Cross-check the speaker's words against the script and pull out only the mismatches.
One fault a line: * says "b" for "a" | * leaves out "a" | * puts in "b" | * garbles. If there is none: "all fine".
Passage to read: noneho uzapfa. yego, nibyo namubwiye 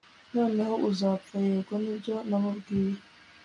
all fine